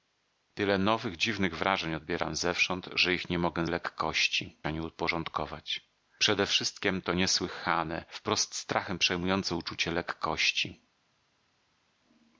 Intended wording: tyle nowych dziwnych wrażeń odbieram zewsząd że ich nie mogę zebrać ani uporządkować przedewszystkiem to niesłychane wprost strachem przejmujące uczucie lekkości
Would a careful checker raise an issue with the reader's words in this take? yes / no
yes